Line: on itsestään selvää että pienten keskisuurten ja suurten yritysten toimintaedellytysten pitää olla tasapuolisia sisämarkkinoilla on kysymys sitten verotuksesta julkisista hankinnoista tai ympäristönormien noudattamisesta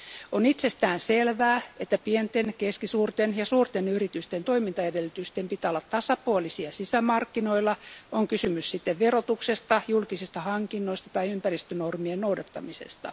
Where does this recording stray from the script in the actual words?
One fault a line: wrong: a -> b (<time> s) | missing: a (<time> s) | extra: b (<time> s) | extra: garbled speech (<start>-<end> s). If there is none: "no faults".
no faults